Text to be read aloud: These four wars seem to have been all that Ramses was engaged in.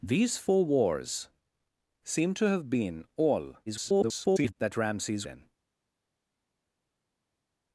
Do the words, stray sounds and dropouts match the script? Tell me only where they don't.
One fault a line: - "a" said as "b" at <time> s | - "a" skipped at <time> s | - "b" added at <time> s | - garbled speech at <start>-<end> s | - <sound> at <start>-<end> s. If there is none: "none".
- garbled speech at 3.7-4.5 s
- "was engaged" skipped at 5.3 s